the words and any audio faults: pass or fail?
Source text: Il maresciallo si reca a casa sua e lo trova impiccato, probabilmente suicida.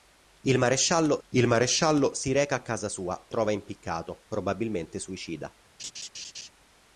fail